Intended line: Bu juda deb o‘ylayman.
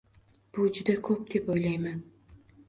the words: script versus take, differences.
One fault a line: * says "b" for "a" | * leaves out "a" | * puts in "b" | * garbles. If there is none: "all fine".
* puts in "ko‘p"